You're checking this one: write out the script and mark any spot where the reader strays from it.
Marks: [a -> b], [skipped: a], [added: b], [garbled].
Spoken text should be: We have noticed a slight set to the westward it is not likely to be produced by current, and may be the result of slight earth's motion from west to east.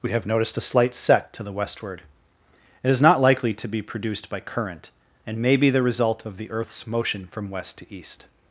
We have noticed a slight set to the westward it is not likely to be produced by current, and may be the result of [slight -> the] earth's motion from west to east.